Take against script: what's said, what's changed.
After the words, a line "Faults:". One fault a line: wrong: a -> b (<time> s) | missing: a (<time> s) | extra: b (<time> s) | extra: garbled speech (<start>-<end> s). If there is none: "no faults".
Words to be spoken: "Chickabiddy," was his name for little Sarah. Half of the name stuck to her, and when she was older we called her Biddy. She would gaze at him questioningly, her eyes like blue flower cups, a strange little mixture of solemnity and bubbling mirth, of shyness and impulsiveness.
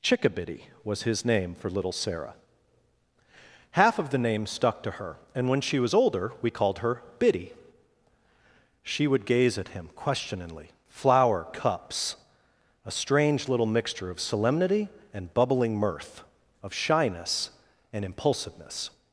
"Chickabiddy," was his name for little Sarah. Half of the name stuck to her, and when she was older we called her Biddy. She would gaze at him questioningly, flower cups, a strange little mixture of solemnity and bubbling mirth, of shyness and impulsiveness.
Faults:
missing: her eyes like blue (10.7 s)